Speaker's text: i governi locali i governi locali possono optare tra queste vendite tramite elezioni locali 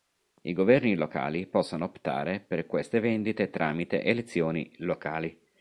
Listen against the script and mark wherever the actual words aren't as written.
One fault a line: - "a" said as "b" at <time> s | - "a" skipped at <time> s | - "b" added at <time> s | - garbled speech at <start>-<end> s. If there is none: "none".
- "i governi locali" skipped at 1.4 s
- "tra" said as "per" at 2.4 s